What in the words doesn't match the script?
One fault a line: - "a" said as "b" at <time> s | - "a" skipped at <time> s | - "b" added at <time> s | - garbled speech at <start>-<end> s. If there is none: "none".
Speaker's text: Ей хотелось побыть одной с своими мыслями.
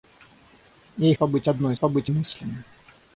- "хотелось" skipped at 1.1 s
- "своими" said as "побыть" at 1.7 s